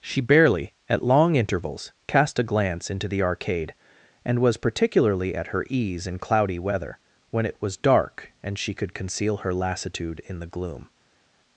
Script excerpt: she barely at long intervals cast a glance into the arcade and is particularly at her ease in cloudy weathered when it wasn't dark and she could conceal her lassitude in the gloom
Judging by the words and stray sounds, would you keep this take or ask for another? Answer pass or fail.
fail